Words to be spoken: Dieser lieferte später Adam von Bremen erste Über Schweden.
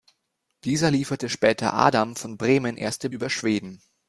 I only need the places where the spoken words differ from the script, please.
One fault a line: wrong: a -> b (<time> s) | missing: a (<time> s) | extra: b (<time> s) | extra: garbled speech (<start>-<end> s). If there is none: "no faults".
no faults